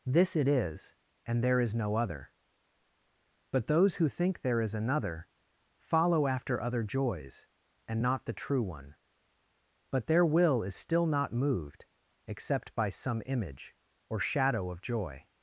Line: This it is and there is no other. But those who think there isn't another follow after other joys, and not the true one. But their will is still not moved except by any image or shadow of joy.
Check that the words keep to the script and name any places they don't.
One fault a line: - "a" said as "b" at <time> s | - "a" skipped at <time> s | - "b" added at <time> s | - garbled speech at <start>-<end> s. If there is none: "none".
- "isn't" said as "is" at 4.6 s
- "any" said as "some" at 12.9 s